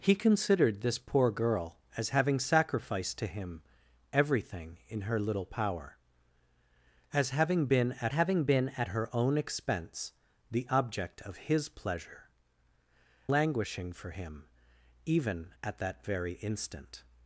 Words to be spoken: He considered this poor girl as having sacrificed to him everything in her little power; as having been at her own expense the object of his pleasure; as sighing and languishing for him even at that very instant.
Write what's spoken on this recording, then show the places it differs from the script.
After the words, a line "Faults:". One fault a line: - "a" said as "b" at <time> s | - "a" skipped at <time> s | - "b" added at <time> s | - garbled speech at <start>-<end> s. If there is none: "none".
He considered this poor girl as having sacrificed to him everything in her little power; as having been at having been at her own expense the object of his pleasure; languishing for him even at that very instant.
Faults:
- "having been at" added at 8.1 s
- "as sighing and" skipped at 12.3 s